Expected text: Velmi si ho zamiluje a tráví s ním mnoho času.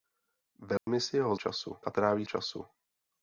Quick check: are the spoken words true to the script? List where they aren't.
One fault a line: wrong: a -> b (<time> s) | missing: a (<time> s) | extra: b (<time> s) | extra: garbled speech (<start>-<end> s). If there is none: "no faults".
wrong: zamiluje -> času (1.3 s)
missing: s ním mnoho (2.3 s)